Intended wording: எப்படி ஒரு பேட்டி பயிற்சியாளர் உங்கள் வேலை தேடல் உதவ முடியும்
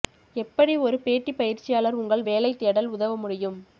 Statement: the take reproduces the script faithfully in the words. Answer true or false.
true